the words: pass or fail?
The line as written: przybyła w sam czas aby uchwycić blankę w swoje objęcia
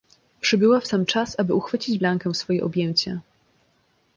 pass